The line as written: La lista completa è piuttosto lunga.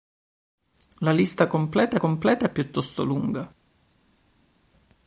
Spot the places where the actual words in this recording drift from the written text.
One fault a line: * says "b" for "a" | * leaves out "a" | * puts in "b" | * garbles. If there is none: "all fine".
* puts in "completa"